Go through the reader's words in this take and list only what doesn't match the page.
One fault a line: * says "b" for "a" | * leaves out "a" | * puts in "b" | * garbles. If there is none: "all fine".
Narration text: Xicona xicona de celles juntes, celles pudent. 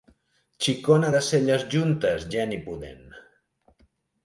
* leaves out "xicona"
* says "geni" for "celles"